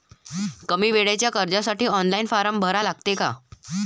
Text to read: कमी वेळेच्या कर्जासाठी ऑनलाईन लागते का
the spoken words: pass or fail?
fail